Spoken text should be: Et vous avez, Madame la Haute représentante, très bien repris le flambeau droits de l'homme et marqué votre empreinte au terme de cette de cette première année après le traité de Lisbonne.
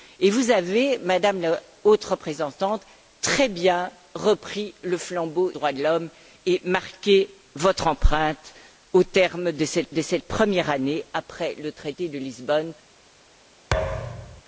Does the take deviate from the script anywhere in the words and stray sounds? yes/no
yes